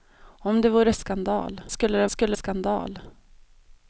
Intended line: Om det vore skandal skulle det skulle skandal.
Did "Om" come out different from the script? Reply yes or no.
no